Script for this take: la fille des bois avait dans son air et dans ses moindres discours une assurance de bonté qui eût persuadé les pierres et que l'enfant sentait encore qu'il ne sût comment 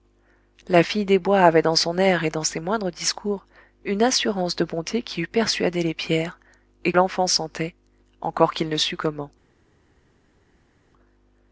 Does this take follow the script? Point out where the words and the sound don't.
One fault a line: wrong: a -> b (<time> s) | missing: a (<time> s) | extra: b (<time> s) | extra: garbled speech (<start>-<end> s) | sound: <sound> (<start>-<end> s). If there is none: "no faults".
missing: que (6.9 s)